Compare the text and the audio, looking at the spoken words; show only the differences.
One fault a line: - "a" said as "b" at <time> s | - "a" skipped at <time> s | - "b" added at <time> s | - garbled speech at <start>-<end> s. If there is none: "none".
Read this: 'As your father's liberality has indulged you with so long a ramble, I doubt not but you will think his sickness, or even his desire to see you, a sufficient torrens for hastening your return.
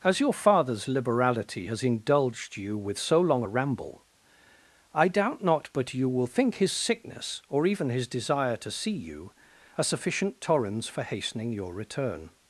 none